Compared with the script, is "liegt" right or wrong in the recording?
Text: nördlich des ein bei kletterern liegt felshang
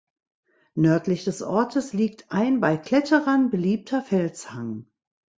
wrong